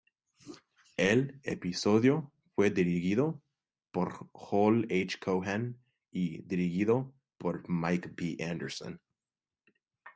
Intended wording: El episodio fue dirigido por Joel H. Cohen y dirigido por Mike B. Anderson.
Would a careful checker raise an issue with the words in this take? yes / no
no